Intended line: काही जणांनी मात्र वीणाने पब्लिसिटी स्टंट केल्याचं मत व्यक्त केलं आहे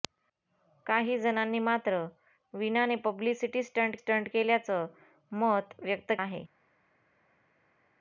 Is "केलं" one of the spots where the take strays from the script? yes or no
yes